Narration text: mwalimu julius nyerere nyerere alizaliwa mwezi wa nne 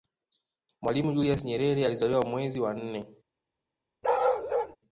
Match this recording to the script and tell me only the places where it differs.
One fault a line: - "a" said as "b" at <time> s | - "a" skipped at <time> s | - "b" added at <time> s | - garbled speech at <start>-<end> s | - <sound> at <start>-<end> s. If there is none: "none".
- "nyerere" skipped at 1.9 s
- bark at 4.0-4.8 s